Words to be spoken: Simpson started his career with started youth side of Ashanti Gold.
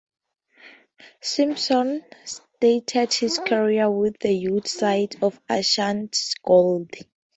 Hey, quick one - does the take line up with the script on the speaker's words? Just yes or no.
no